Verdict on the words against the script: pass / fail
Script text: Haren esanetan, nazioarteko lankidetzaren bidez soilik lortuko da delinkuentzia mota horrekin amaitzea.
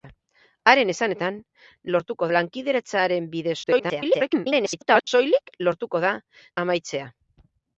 fail